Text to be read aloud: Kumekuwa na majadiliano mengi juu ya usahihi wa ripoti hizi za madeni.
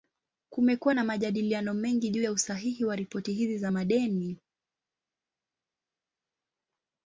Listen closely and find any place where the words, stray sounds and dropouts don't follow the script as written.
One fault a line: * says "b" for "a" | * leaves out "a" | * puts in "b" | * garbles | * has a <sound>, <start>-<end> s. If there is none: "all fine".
all fine